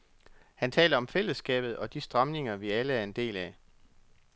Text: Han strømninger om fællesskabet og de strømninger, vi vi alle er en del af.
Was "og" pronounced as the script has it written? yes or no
yes